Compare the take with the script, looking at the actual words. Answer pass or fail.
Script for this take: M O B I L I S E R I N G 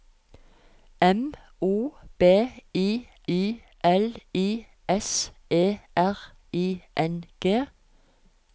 fail